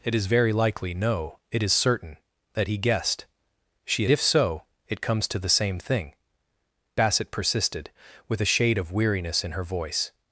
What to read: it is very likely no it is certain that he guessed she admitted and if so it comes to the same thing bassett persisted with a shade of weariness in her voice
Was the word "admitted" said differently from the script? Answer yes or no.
yes